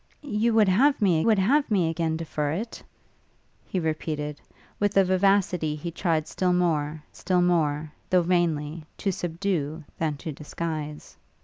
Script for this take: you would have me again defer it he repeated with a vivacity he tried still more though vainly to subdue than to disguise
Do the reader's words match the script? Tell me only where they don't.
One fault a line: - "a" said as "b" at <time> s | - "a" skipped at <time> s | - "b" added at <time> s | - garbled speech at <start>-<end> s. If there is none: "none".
- "would have me" added at 1.3 s
- "still more" added at 7.2 s